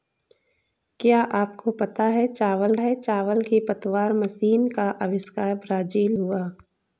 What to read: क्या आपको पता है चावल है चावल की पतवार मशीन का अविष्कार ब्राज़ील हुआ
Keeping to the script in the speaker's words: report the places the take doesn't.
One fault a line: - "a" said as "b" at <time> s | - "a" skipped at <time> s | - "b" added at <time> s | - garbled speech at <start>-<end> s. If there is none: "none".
none